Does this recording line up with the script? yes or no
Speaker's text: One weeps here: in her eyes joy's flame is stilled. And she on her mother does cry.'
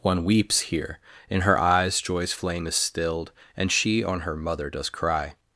yes